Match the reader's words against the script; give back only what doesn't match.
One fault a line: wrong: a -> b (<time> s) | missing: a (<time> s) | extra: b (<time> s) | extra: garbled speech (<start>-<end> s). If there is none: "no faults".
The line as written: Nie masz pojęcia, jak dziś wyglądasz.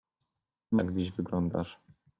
missing: masz pojęcia (0.8 s)